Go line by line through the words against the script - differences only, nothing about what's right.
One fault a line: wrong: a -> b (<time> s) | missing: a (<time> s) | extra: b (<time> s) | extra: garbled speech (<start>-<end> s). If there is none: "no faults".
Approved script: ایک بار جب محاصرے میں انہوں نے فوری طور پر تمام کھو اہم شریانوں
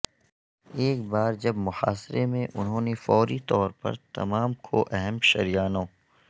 no faults